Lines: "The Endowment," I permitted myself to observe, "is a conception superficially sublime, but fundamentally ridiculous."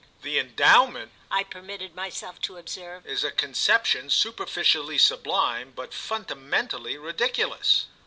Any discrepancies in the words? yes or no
no